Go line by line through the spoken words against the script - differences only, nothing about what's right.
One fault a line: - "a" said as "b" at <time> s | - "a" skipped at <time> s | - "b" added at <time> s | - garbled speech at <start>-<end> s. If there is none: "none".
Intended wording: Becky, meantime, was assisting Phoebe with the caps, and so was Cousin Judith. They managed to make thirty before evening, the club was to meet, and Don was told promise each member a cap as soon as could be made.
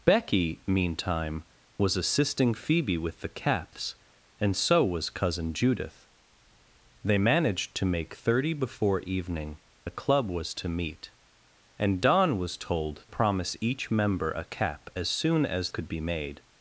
none